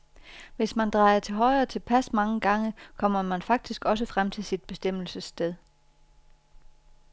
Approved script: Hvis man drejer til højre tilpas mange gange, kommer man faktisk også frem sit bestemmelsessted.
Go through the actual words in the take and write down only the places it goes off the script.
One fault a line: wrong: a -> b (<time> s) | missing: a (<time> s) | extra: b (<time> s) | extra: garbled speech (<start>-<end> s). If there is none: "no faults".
extra: til (4.3 s)